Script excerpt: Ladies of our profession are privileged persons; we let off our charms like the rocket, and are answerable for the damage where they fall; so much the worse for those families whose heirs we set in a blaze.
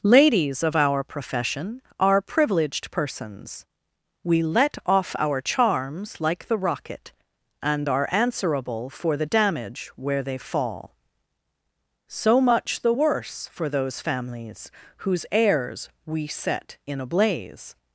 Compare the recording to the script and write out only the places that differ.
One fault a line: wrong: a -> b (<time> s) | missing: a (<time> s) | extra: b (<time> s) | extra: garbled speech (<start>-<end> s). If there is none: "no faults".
no faults